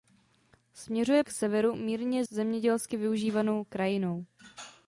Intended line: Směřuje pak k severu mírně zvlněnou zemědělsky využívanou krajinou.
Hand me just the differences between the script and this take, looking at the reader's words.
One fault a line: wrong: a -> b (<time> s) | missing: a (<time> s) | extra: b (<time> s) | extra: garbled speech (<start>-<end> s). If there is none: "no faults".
missing: pak (1.2 s)
missing: zvlněnou (2.2 s)